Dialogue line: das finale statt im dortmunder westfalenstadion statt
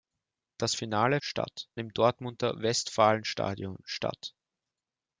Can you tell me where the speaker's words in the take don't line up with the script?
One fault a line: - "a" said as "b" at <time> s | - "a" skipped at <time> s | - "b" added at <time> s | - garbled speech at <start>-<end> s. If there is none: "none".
none